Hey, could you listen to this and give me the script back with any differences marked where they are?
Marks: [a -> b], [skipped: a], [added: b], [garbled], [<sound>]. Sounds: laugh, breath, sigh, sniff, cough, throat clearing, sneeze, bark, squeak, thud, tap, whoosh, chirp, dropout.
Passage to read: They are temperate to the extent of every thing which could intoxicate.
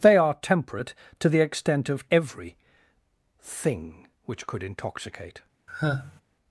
They are temperate to the extent of every thing which could intoxicate. [sigh]